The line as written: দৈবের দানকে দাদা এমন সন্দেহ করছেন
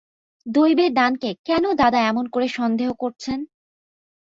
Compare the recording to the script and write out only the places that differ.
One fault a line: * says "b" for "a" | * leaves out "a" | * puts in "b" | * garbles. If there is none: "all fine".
* puts in "কেন"
* puts in "করে"